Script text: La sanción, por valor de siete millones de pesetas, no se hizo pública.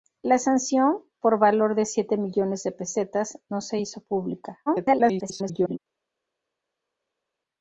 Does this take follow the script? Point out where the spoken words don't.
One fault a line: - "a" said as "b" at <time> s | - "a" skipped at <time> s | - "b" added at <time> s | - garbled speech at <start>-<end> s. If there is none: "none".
- garbled speech at 4.7-5.8 s